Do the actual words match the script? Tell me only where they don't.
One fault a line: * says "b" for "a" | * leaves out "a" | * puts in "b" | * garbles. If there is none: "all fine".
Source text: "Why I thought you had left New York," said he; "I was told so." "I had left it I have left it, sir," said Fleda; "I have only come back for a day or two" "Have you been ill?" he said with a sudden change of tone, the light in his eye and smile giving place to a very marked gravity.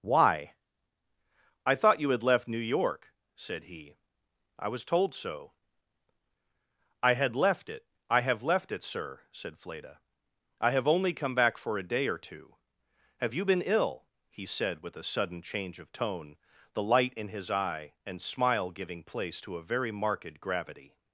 all fine